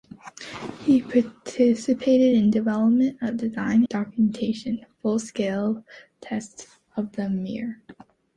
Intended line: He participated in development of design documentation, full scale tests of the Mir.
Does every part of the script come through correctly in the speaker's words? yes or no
yes